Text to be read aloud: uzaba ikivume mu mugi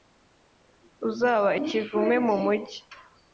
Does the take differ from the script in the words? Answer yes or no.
no